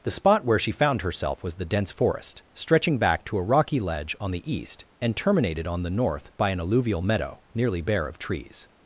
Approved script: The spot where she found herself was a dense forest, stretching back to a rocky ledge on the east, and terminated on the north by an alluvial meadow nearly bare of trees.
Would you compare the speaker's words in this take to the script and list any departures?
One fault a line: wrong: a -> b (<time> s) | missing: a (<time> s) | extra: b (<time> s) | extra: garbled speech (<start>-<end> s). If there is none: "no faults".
wrong: a -> the (1.6 s)